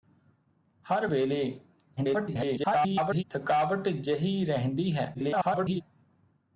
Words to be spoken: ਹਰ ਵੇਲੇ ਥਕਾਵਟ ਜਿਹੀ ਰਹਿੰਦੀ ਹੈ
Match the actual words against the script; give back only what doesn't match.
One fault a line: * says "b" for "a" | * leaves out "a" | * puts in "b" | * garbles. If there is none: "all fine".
* garbles
* garbles